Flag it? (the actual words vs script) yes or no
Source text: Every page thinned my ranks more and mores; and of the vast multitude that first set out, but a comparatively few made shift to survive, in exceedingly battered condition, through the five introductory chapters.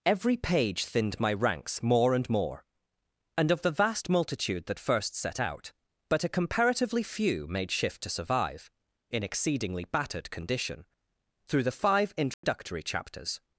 yes